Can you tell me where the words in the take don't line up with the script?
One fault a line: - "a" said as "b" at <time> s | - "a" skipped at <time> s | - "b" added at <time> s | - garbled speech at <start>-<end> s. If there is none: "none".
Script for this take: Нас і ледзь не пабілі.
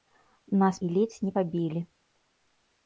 none